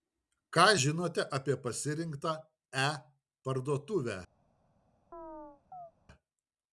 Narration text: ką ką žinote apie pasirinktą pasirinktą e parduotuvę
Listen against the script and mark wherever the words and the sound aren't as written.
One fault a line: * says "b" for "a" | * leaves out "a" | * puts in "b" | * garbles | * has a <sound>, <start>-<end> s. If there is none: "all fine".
* leaves out "ką"
* leaves out "pasirinktą"
* has a chirp, 5.1-5.9 s